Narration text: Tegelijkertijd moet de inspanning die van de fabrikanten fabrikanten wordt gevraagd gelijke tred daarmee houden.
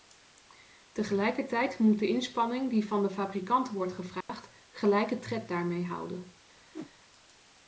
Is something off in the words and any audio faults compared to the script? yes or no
yes